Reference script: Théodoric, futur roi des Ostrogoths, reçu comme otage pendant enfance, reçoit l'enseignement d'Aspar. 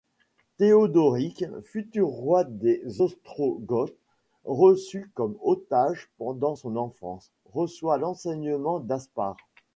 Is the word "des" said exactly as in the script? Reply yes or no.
yes